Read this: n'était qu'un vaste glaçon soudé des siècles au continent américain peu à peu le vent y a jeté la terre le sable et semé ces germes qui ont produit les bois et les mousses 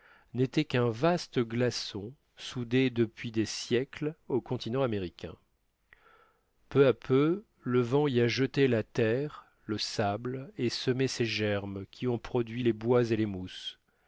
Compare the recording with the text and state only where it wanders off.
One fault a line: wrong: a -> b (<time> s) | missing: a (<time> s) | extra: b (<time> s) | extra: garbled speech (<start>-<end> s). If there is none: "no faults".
extra: depuis (2.9 s)